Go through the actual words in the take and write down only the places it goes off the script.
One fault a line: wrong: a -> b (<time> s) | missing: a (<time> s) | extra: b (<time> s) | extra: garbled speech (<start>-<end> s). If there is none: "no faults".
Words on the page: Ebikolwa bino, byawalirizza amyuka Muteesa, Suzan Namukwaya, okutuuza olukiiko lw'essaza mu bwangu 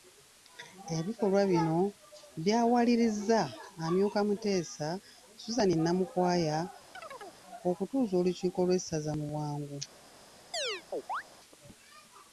no faults